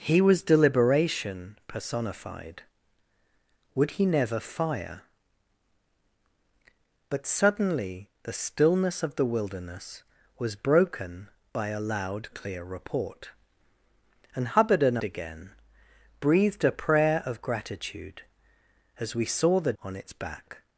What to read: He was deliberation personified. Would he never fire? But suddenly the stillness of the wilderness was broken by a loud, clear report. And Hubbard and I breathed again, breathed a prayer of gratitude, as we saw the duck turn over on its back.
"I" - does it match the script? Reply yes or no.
no